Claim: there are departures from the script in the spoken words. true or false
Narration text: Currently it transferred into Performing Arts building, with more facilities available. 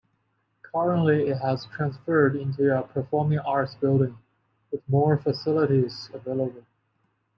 true